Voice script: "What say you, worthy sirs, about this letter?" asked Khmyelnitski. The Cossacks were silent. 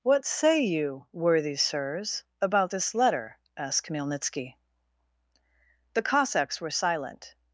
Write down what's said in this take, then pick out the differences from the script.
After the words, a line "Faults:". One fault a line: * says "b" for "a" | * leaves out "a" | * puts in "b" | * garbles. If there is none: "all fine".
"What say you, worthy sirs, about this letter?" asked Khmyelnitski. The Cossacks were silent.
Faults:
all fine